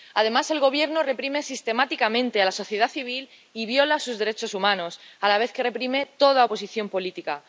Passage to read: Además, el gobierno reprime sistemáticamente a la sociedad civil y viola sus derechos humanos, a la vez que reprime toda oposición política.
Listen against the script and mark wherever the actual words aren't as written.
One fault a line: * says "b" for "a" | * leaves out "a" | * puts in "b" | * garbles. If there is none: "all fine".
all fine